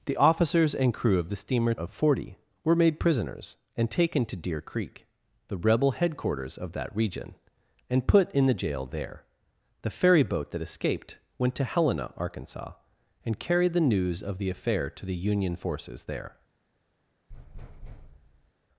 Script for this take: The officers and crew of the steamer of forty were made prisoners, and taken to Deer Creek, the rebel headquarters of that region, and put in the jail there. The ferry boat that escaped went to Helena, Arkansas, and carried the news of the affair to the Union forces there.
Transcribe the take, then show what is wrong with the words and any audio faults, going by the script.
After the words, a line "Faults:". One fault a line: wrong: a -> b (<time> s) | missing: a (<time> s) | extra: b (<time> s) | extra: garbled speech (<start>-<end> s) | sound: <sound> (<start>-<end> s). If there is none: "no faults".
The officers and crew of the steamer of forty were made prisoners, and taken to Deer Creek, the rebel headquarters of that region, and put in the jail there. The ferry boat that escaped went to Helena, Arkansas, and carried the news of the affair to the Union forces there.
Faults:
sound: thud (17.3-18.5 s)